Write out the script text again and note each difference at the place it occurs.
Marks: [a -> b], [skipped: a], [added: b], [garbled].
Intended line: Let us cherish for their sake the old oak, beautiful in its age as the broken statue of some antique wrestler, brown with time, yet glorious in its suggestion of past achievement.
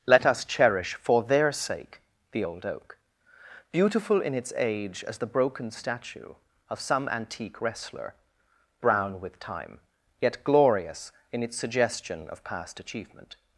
Let us cherish for their sake the old oak, beautiful in its age as the broken statue of some antique wrestler, brown with time, yet glorious in its suggestion of past achievement.